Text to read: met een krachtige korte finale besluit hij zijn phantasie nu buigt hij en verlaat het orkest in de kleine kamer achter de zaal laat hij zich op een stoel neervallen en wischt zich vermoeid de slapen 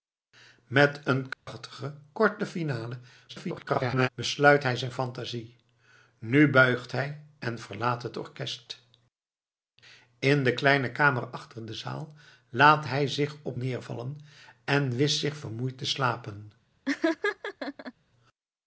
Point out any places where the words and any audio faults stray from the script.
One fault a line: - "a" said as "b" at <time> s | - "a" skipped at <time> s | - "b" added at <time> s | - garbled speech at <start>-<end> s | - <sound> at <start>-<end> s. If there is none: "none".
- dropout at 1.3-1.5 s
- garbled speech at 3.3-4.1 s
- "een stoel" skipped at 13.6 s
- laugh at 16.8-17.9 s